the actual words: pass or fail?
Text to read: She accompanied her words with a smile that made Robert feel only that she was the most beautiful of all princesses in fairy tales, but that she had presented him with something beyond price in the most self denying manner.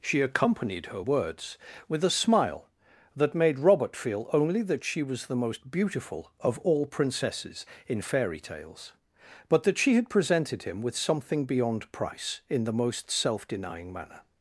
pass